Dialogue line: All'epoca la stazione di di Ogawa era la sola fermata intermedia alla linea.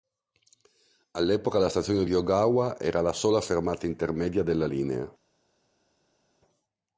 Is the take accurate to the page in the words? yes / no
no